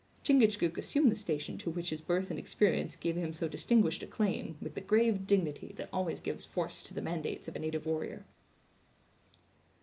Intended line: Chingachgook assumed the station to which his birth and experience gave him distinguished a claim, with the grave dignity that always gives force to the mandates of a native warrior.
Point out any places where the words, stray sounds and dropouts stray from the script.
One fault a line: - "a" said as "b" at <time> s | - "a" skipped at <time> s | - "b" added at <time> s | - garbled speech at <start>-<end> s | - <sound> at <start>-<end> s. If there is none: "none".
- "so" added at 3.3 s